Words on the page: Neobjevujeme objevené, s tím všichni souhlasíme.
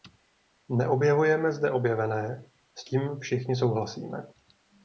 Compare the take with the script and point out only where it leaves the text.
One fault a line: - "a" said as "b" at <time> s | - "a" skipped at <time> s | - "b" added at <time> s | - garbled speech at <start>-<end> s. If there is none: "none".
- "zde" added at 1.5 s